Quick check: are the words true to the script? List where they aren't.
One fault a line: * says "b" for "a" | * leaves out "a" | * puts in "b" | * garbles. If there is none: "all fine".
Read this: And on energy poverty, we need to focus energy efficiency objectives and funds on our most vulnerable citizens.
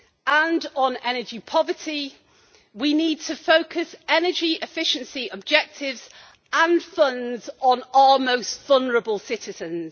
all fine